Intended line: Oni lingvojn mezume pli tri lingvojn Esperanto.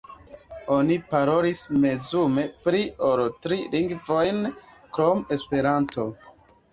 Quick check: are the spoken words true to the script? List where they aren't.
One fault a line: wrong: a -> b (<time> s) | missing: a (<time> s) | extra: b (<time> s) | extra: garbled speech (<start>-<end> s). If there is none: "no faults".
wrong: lingvojn -> parolis (1.1 s)
extra: ol (3.1 s)
extra: krom (5.0 s)